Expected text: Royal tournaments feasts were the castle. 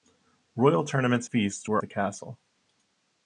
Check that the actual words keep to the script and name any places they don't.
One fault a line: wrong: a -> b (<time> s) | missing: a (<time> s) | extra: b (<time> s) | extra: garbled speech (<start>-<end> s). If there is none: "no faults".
no faults